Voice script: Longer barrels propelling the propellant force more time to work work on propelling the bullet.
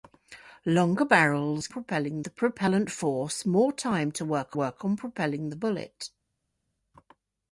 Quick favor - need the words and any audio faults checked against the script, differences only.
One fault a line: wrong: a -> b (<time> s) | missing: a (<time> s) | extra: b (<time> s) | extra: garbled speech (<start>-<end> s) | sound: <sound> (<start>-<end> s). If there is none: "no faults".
no faults